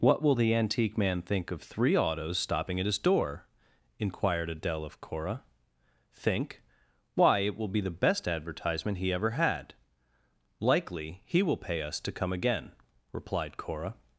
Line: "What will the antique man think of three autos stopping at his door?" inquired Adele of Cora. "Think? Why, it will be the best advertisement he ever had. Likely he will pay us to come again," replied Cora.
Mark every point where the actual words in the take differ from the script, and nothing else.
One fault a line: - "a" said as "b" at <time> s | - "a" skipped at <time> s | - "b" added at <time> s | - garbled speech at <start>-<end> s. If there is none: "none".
none